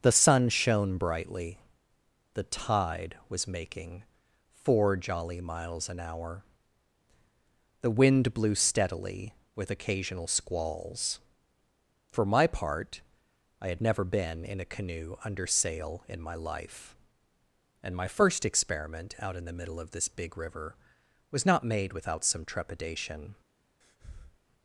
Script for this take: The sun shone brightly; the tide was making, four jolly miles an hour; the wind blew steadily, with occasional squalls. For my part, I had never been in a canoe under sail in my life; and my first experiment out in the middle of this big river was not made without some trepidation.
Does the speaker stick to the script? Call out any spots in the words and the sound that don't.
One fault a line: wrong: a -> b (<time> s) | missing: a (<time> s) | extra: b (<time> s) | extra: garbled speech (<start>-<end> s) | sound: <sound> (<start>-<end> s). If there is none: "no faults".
sound: breath (23.8-24.4 s)